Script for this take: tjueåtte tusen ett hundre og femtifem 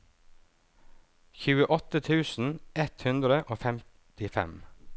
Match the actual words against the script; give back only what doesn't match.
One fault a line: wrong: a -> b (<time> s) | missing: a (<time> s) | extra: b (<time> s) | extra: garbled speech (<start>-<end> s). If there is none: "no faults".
no faults